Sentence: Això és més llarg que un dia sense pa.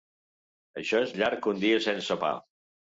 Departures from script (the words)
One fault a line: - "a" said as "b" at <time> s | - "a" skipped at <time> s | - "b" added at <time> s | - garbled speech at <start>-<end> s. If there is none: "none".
- "més" skipped at 1.1 s